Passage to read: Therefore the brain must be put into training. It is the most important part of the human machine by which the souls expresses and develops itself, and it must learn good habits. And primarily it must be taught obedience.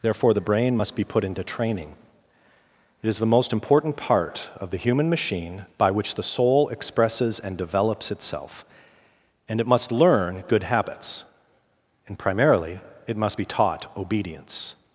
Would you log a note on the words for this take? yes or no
yes